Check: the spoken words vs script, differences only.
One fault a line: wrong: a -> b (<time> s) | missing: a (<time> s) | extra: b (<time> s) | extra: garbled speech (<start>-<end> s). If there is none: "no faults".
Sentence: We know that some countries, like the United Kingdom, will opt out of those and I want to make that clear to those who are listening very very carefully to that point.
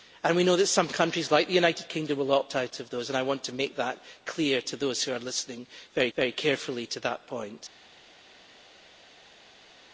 no faults